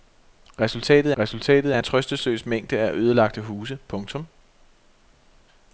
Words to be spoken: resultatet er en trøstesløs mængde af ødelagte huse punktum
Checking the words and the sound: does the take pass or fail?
fail